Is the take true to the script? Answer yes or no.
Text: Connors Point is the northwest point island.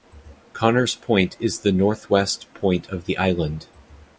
no